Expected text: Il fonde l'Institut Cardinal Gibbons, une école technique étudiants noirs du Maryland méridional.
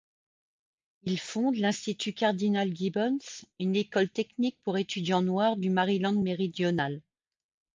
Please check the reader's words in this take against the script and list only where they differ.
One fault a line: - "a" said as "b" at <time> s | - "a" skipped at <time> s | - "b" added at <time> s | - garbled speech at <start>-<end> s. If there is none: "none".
- "pour" added at 4.6 s